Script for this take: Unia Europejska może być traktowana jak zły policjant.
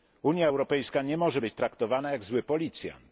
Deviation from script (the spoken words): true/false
true